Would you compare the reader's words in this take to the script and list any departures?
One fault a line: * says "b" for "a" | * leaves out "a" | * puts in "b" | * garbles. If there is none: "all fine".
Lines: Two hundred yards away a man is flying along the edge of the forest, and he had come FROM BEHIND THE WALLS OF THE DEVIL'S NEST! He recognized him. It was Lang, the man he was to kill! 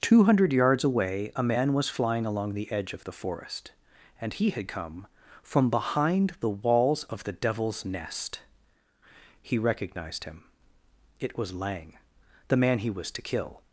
* says "was" for "is"